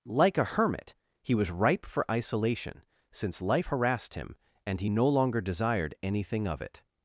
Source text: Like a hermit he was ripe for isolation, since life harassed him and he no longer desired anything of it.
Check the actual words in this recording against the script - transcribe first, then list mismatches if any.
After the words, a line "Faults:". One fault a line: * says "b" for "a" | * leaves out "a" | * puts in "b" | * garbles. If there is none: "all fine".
Like a hermit he was ripe for isolation, since life harassed him and he no longer desired anything of it.
Faults:
all fine